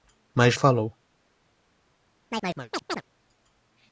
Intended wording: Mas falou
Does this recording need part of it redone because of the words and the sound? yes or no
yes